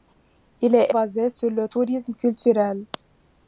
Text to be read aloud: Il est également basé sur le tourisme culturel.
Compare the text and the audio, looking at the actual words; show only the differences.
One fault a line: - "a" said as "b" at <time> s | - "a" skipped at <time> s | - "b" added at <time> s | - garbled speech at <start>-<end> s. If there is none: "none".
- "également" skipped at 0.9 s